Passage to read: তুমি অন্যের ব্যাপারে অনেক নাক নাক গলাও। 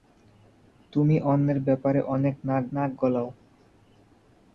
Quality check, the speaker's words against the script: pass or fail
pass